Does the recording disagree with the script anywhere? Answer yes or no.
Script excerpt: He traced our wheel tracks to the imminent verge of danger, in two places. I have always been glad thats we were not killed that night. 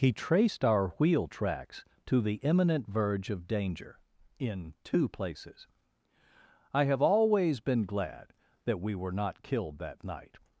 yes